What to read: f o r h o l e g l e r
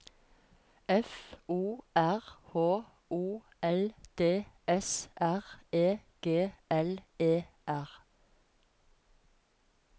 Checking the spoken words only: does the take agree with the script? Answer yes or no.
no